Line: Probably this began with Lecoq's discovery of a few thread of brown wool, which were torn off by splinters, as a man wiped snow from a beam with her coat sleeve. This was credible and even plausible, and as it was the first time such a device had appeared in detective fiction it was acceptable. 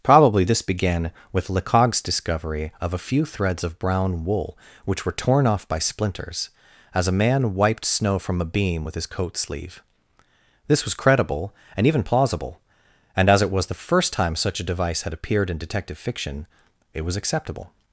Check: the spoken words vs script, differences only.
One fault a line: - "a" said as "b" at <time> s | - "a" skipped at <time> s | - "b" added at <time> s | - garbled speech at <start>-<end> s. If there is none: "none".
- "thread" said as "threads" at 3.2 s
- "her" said as "his" at 8.9 s